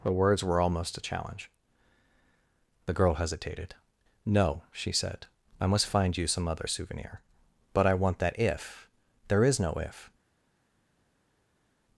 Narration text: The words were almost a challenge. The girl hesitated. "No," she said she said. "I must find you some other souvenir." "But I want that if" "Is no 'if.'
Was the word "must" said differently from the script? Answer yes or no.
no